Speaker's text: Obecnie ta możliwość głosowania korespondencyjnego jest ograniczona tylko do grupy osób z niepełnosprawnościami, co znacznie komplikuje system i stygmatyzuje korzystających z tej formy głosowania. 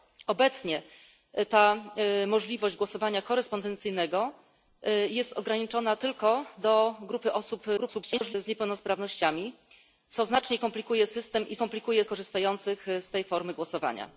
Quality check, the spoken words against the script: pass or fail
fail